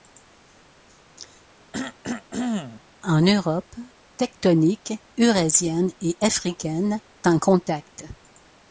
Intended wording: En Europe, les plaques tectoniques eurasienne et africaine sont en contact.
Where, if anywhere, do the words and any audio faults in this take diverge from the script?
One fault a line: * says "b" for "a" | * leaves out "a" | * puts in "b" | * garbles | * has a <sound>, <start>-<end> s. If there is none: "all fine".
* has a cough, 1.7-2.8 s
* leaves out "les plaques"
* leaves out "sont"